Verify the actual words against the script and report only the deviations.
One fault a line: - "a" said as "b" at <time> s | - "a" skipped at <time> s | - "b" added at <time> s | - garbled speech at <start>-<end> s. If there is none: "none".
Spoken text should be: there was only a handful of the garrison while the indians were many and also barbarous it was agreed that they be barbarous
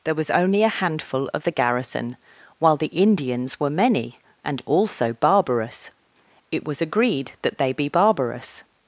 none